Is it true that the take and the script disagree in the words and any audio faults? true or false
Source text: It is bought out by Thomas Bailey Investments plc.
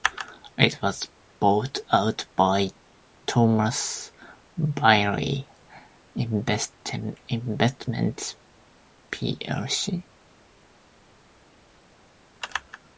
true